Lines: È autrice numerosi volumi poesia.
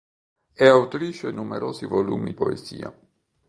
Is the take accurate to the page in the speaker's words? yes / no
yes